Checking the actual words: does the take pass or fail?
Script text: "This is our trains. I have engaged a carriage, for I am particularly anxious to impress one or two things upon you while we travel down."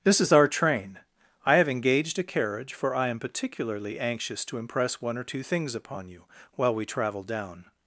fail